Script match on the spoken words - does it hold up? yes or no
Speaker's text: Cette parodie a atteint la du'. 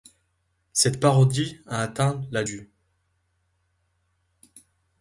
yes